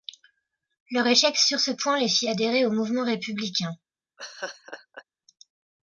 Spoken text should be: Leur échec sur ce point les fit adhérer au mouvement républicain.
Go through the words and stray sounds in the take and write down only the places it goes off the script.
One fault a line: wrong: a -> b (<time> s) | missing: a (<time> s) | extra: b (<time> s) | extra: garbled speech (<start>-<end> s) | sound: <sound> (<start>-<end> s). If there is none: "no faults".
sound: laugh (4.2-5.0 s)